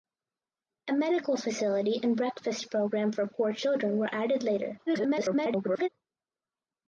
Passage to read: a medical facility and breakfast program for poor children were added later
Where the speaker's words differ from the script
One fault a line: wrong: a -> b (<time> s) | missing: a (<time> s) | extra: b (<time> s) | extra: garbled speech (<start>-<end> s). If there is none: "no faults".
extra: garbled speech (4.9-5.9 s)